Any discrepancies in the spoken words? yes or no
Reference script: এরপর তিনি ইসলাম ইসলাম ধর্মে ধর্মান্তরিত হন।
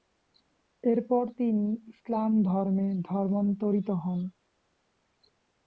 yes